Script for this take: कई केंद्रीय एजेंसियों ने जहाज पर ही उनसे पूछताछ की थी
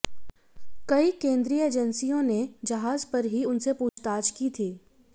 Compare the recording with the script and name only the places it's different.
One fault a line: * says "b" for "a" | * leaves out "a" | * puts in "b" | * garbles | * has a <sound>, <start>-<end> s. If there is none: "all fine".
* has a dropout, 3.9-4.0 s